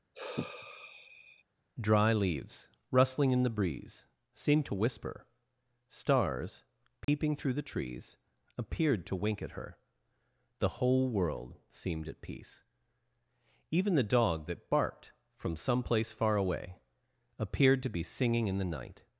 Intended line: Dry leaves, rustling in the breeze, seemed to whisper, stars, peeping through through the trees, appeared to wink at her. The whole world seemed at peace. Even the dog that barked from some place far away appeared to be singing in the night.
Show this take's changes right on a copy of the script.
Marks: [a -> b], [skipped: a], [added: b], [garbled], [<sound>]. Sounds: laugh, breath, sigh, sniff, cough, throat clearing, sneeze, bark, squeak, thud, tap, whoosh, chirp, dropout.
[sigh] Dry leaves, rustling in the breeze, seemed to whisper, stars, peeping [dropout] through [skipped: through] the trees, appeared to wink at her. The whole world seemed at peace. Even the dog that barked from some place far away appeared to be singing in the night.